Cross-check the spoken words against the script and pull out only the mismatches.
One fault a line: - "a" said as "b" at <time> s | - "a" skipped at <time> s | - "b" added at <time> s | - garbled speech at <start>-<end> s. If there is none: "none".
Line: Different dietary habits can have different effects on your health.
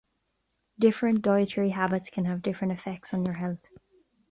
none